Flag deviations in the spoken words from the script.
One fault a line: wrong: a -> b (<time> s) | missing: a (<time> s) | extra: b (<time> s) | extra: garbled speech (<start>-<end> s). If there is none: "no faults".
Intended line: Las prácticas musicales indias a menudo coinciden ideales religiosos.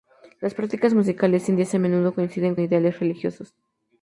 no faults